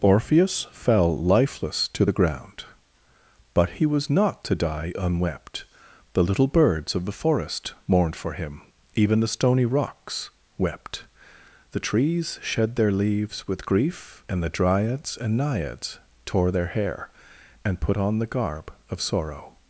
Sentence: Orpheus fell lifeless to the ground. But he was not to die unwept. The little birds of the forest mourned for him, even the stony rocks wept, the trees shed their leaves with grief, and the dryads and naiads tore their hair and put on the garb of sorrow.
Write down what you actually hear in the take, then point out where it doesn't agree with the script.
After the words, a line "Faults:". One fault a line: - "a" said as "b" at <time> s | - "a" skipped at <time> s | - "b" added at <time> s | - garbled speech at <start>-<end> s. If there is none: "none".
Orpheus fell lifeless to the ground. But he was not to die unwept. The little birds of the forest mourned for him, even the stony rocks wept, the trees shed their leaves with grief, and the dryads and naiads tore their hair and put on the garb of sorrow.
Faults:
none